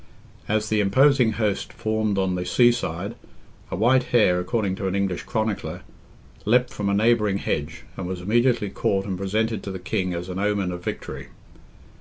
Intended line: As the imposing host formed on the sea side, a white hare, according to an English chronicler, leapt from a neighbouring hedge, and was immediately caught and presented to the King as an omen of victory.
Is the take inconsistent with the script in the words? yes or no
no